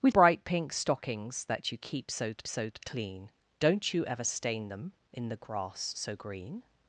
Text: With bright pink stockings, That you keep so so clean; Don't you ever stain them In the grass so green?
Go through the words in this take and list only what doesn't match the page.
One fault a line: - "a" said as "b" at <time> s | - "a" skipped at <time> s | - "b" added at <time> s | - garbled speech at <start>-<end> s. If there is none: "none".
none